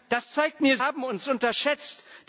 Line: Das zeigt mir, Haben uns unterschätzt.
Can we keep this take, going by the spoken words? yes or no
yes